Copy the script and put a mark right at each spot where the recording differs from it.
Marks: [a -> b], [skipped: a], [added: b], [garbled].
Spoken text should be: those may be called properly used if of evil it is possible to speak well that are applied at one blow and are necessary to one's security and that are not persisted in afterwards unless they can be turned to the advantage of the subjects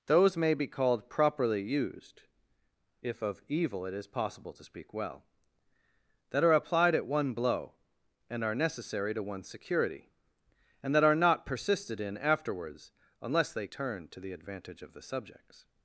those may be called properly used if of evil it is possible to speak well that are applied at one blow and are necessary to one's security and that are not persisted in afterwards unless they [skipped: can be] turned to the advantage of the subjects